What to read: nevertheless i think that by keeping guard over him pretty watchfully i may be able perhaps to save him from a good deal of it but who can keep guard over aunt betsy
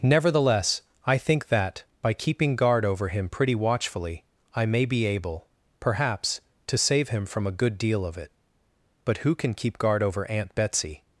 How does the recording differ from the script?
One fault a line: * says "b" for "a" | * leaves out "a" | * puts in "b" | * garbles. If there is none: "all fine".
all fine